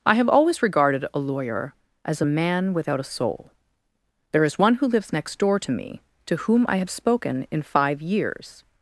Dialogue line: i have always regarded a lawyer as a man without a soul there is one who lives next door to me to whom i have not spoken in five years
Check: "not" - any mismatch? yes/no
yes